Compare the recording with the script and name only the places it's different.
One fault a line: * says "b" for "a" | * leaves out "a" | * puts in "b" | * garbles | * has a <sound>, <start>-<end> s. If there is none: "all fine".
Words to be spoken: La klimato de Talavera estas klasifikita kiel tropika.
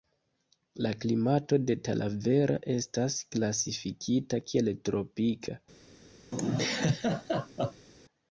* has a laugh, 6.3-7.9 s